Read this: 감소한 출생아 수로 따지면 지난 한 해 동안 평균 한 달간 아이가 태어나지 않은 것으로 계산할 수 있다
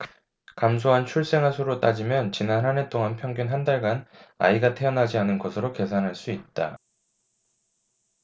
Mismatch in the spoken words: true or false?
false